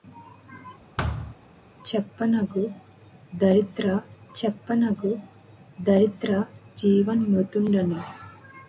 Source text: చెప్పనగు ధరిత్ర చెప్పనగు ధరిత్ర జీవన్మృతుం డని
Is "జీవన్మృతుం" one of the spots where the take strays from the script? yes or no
no